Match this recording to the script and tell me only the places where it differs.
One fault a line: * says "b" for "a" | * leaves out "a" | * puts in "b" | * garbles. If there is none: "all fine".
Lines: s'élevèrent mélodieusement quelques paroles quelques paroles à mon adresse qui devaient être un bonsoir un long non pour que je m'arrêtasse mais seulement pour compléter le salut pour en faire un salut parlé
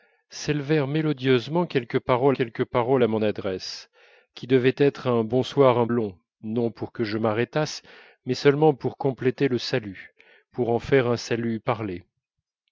all fine